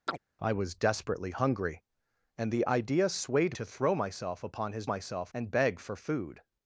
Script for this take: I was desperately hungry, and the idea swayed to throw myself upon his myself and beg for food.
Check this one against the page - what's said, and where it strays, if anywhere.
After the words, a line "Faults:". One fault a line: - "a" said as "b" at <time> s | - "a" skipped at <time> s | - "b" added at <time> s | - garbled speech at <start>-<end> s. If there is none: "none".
I was desperately hungry, and the idea swayed to throw myself upon his myself and beg for food.
Faults:
none